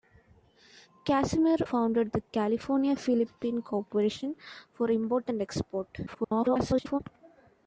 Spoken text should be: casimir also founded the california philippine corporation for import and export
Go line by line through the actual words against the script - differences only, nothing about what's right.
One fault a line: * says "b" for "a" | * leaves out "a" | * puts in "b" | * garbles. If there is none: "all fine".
* leaves out "also"
* garbles